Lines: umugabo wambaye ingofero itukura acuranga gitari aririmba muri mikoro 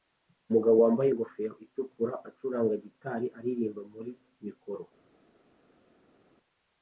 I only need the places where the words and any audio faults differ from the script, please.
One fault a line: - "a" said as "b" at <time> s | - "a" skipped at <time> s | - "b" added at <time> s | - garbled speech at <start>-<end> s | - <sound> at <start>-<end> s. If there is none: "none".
none